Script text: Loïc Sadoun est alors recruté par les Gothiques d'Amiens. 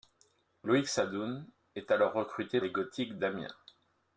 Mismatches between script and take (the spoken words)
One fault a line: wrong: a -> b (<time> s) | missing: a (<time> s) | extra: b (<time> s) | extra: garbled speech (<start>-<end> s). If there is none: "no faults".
missing: par (2.6 s)